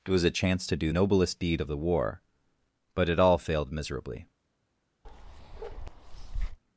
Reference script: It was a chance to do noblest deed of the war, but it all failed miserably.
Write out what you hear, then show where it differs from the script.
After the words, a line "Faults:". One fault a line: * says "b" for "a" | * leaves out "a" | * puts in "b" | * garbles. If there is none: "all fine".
It was a chance to do noblest deed of the war, but it all failed miserably.
Faults:
all fine